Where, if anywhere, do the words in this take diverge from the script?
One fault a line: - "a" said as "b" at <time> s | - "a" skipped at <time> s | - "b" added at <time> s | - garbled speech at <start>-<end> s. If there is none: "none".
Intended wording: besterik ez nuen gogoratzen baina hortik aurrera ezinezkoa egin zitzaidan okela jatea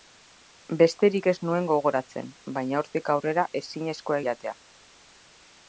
- "egin zitzaidan okela" skipped at 4.2 s